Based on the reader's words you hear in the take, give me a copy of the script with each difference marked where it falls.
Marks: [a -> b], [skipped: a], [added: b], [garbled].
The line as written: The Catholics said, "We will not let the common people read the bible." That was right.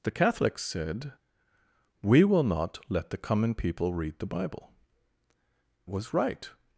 The Catholics said, "We will not let the common people read the bible." [skipped: That] was right.